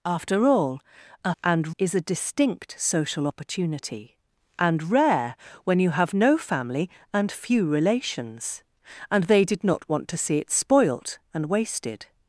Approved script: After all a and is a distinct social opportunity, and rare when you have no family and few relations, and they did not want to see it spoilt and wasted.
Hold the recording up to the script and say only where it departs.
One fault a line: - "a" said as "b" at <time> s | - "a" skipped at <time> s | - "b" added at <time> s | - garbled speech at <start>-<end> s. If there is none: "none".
none